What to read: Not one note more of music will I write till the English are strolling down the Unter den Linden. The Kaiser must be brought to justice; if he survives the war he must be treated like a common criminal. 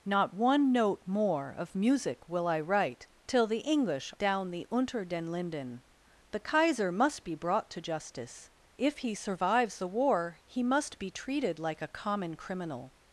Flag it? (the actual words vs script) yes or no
yes